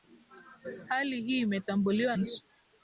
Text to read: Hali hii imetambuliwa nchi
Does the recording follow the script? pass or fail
pass